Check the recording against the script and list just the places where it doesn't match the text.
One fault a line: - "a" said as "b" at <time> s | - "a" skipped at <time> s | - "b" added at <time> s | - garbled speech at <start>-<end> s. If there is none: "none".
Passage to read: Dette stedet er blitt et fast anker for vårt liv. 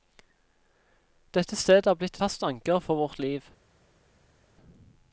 - "et" skipped at 2.2 s